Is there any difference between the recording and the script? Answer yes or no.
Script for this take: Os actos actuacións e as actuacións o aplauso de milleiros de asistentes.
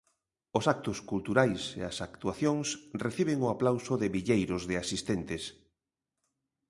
yes